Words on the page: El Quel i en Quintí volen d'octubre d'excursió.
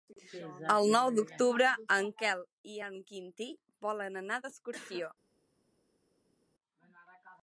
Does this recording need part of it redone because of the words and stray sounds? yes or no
yes